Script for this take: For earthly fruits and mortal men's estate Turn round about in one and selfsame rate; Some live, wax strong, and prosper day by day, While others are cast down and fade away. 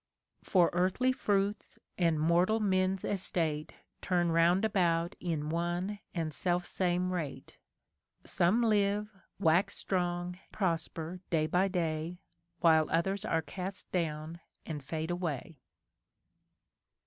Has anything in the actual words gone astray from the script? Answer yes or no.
yes